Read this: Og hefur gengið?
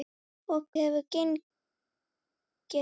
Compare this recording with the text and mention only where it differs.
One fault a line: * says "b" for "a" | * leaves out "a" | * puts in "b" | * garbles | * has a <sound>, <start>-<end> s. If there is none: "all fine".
all fine